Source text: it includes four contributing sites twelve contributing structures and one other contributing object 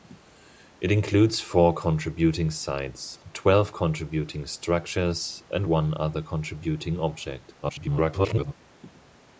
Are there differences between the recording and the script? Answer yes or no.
yes